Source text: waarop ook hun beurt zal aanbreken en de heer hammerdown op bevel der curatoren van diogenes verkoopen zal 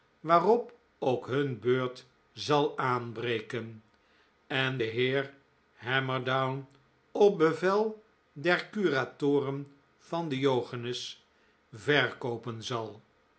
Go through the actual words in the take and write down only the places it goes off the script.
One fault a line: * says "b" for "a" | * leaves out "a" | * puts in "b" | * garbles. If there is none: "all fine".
all fine